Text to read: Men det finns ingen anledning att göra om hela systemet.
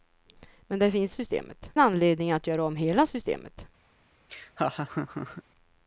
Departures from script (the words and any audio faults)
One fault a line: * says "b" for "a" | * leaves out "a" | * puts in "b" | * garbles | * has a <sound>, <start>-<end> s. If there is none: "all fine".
* says "systemet" for "ingen"
* has a laugh, 4.3-5.4 s